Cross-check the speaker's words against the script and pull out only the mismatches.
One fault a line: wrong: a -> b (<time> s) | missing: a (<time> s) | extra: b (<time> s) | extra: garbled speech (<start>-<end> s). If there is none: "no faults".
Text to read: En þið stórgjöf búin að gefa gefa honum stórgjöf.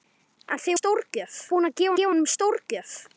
no faults